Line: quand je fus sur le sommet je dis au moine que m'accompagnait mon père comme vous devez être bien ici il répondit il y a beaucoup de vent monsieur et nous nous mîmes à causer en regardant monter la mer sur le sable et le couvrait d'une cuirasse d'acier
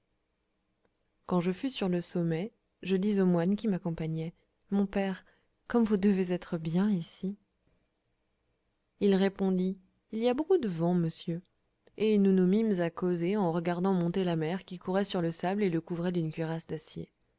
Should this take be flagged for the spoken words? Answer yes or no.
yes